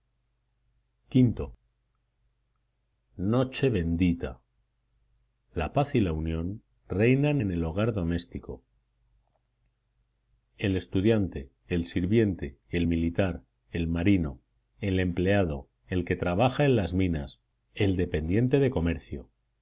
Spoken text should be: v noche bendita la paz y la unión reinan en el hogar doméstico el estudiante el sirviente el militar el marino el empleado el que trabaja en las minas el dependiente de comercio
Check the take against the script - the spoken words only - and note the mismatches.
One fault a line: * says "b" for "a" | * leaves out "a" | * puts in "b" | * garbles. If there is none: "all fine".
all fine